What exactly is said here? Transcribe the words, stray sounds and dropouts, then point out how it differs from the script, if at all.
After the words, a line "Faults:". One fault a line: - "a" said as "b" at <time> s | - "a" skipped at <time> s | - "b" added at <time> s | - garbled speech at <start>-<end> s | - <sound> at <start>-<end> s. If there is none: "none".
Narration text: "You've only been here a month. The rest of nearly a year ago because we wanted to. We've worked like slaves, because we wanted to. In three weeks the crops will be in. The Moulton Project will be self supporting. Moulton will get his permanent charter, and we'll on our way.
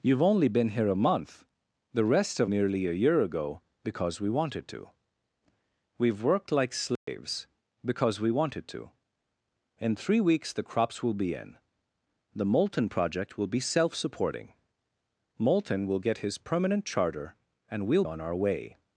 "You've only been here a month. The rest of nearly a year ago because we wanted to. We've worked like slaves, because we wanted to. In three weeks the crops will be in. The Moulton Project will be self supporting. Moulton will get his permanent charter, and we'll on our way.
Faults:
- dropout at 7.0-7.1 s